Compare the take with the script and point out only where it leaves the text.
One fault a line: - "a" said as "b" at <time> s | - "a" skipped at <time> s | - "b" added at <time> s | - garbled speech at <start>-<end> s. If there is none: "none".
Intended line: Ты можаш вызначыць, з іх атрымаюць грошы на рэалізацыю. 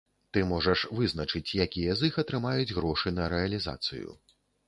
- "якія" added at 1.6 s